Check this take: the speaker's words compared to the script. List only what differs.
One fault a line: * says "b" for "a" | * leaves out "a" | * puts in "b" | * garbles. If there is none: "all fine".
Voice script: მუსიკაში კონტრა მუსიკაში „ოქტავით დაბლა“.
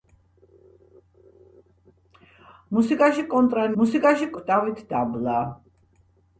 all fine